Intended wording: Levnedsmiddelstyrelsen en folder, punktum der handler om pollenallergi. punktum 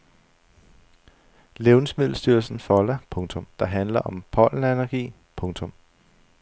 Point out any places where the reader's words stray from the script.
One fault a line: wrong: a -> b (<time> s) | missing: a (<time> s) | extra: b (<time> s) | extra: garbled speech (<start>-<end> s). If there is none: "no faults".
no faults